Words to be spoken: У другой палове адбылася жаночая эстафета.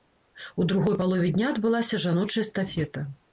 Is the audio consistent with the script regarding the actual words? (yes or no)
no